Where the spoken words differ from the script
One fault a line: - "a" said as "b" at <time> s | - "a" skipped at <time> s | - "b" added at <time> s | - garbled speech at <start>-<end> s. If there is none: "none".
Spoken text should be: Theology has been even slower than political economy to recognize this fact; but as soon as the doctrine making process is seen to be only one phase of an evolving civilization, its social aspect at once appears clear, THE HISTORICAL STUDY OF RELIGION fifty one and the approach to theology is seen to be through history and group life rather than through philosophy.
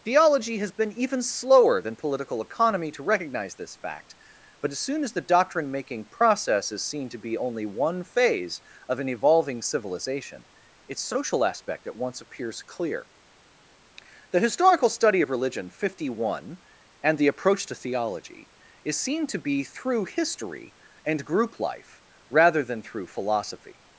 none